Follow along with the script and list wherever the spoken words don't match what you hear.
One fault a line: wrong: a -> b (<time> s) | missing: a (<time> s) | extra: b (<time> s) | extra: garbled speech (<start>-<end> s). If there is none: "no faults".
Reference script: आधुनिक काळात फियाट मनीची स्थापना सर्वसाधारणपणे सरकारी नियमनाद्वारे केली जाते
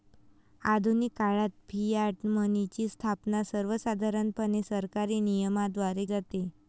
missing: केली (6.0 s)